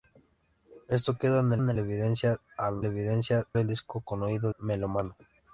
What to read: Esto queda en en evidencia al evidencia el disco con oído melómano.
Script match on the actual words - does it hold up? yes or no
yes